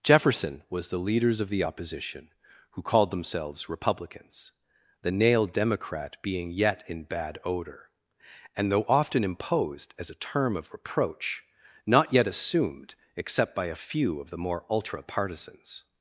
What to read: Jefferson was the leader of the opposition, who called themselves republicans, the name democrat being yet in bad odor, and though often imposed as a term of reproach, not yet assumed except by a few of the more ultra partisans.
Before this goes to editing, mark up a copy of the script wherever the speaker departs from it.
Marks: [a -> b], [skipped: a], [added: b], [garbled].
Jefferson was the [leader -> leaders] of the opposition, who called themselves republicans, the [name -> nail] democrat being yet in bad odor, and though often imposed as a term of reproach, not yet assumed except by a few of the more ultra partisans.